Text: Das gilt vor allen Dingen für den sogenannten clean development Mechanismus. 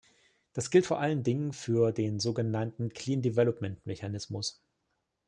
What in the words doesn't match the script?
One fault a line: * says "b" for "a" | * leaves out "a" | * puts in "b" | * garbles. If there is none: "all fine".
all fine